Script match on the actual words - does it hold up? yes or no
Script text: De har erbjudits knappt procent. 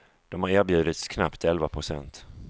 no